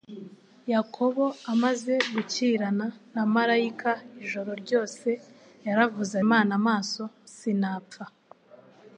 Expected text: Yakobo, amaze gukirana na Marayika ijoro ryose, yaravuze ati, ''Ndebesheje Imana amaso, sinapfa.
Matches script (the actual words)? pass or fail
fail